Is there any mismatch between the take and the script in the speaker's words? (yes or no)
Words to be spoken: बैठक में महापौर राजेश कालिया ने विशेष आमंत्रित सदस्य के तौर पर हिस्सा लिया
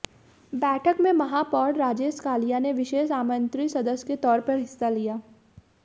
no